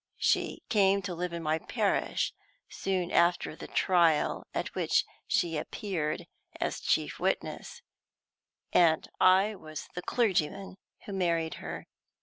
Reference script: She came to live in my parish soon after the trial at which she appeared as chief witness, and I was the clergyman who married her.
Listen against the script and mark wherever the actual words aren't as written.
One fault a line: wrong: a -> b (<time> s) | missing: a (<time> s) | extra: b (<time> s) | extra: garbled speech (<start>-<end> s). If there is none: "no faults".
no faults